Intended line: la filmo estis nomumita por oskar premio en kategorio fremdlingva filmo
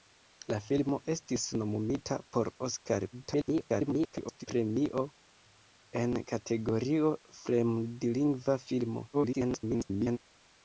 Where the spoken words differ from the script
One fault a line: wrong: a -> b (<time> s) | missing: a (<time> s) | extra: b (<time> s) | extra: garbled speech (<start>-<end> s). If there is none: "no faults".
extra: garbled speech (3.1-4.5 s)
extra: garbled speech (9.1-10.2 s)